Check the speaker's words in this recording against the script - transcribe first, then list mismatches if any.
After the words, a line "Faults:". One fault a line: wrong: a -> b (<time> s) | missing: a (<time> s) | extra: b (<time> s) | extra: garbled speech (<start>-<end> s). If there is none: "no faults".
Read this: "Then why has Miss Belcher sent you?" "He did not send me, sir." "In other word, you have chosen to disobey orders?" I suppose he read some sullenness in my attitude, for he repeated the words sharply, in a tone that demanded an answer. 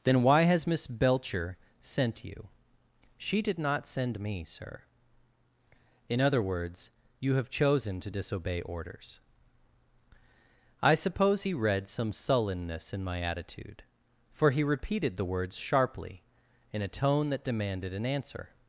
"Then why has Miss Belcher sent you?" "She did not send me, sir." "In other words, you have chosen to disobey orders?" I suppose he read some sullenness in my attitude, for he repeated the words sharply, in a tone that demanded an answer.
Faults:
wrong: He -> She (3.2 s)
wrong: word -> words (6.4 s)